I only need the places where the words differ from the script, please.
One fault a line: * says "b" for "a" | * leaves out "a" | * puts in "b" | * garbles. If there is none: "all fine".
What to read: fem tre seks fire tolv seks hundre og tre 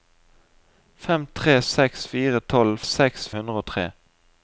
all fine